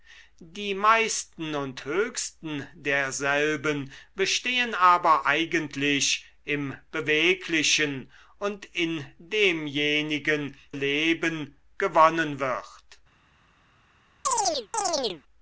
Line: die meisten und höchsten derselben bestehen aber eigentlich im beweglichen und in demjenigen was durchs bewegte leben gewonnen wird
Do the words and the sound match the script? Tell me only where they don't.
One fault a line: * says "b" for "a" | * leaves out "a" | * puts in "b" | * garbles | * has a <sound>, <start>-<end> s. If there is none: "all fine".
* leaves out "was durchs bewegte"
* has a chirp, 14.2-15.2 s